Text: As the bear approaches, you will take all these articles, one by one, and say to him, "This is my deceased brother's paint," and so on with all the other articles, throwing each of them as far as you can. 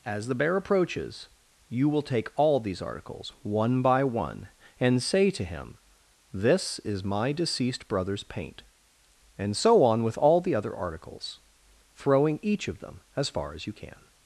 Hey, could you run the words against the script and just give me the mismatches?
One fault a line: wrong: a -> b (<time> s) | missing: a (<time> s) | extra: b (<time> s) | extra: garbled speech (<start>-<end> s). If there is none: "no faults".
no faults